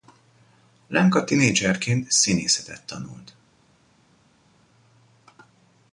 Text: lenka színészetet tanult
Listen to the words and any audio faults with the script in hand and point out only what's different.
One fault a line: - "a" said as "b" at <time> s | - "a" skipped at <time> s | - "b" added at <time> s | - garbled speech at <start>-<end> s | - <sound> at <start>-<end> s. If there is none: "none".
- "tinédzserként" added at 1.2 s